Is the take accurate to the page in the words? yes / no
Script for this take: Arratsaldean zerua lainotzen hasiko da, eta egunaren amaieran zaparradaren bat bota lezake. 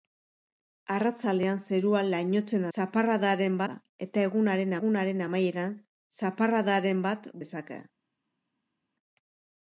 no